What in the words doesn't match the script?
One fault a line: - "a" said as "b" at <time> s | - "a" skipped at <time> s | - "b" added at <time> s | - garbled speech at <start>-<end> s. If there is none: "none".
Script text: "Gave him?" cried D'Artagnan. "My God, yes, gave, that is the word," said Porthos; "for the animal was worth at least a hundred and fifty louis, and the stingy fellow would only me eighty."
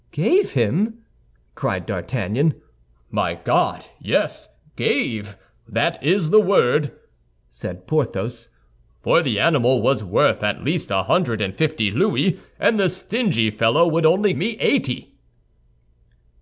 none